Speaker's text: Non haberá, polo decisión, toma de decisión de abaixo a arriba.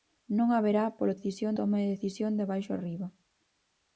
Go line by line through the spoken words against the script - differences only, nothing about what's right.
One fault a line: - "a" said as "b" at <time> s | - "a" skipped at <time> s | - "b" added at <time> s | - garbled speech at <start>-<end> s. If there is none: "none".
none